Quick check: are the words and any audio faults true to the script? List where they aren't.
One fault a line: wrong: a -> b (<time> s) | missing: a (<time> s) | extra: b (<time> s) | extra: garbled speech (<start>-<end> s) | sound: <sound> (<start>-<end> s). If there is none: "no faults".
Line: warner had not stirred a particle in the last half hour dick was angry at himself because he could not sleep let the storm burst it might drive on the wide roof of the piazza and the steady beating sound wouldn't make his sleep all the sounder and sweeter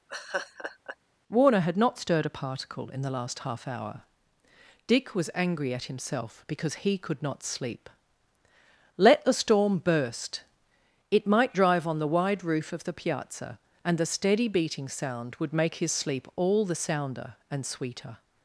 sound: laugh (0.1-1.0 s)
wrong: wouldn't -> would (15.4 s)